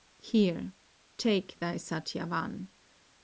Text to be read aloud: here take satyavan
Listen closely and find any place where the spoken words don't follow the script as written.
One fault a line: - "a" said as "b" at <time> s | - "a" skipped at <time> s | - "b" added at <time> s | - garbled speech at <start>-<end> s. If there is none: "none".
- "thy" added at 1.6 s